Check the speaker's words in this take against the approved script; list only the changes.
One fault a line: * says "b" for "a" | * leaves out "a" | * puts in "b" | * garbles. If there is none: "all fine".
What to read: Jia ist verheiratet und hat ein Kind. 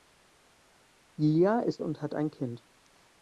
* leaves out "verheiratet"